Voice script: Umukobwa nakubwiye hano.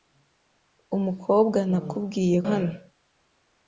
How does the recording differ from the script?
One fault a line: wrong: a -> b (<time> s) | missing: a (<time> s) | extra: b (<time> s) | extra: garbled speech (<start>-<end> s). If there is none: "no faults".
no faults